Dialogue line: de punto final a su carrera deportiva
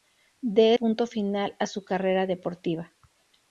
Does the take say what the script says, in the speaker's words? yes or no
yes